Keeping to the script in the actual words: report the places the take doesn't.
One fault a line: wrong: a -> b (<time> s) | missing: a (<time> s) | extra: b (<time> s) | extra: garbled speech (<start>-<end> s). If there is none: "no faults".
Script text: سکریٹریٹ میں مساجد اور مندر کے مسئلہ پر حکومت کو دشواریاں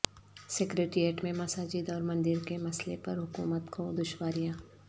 no faults